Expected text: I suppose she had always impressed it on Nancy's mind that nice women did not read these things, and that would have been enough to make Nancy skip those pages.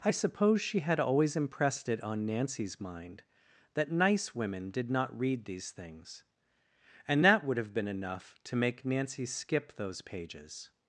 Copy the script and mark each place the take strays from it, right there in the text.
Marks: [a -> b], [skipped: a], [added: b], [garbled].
I suppose she had always impressed it on Nancy's mind that nice women did not read these things, and that would have been enough to make Nancy skip those pages.